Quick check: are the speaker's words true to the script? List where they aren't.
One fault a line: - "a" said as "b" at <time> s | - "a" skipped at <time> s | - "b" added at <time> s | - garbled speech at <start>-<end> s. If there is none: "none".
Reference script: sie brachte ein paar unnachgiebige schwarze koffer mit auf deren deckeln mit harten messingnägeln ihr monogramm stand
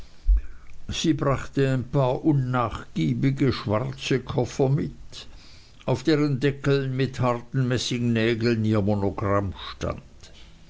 none